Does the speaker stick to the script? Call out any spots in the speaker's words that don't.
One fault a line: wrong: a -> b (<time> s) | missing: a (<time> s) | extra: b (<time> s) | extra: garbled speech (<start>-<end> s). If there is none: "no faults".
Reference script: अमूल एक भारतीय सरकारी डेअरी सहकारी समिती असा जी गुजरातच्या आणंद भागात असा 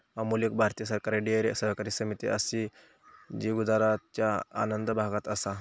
no faults